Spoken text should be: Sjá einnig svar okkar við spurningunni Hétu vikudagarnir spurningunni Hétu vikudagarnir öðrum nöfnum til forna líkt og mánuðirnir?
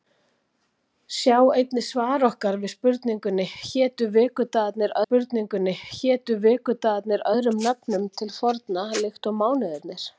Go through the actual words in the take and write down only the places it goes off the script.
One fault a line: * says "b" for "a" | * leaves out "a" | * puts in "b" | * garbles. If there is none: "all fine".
all fine